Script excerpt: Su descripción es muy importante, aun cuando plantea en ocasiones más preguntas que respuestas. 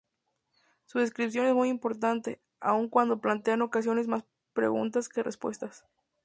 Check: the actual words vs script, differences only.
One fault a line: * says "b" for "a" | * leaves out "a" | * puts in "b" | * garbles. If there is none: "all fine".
all fine